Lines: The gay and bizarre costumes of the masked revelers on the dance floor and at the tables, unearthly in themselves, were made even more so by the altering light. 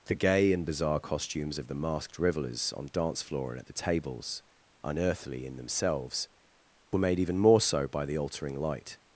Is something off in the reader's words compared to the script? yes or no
yes